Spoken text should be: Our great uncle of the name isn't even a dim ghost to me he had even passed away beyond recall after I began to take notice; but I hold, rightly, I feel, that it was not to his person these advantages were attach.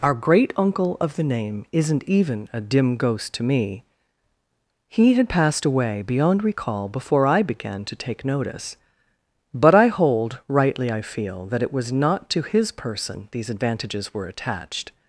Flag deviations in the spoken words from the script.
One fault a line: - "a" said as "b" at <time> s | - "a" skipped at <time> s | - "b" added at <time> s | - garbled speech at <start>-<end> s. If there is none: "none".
- "even" skipped at 5.3 s
- "after" said as "before" at 6.9 s
- "attach" said as "attached" at 14.3 s